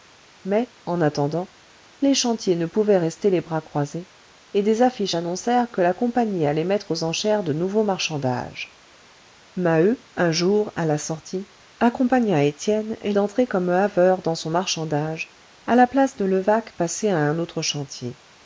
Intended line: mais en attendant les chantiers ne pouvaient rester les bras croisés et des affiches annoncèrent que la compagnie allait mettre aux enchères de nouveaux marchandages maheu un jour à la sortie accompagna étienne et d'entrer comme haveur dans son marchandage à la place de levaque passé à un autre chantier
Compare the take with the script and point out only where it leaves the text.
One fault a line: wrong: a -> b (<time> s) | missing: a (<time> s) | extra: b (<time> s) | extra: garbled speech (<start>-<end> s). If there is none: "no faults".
no faults